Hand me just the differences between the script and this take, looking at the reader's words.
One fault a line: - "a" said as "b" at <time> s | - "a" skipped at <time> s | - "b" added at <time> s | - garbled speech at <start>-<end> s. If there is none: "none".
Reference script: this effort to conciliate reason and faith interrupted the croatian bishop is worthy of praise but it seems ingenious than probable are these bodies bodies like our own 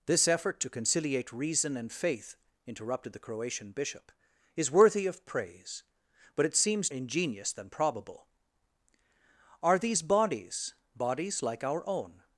none